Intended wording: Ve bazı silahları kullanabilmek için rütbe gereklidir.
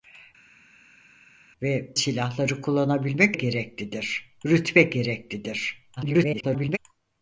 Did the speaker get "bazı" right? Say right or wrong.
wrong